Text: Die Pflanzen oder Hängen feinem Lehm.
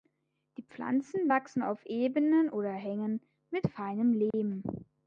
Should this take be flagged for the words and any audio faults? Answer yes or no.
yes